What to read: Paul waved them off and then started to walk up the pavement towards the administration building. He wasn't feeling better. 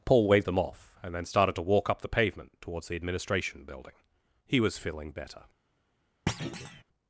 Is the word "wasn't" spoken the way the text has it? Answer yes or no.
no